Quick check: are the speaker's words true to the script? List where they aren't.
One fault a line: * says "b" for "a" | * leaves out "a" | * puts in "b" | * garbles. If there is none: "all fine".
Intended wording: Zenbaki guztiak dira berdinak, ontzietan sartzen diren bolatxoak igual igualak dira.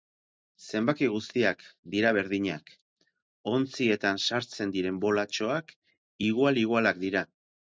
all fine